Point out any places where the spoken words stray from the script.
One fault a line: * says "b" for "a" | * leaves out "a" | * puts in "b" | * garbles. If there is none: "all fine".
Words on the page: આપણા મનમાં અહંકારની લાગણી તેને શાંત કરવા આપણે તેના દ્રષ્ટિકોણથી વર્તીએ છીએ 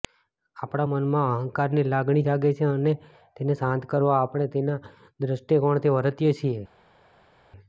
* puts in "જાગે છે અને"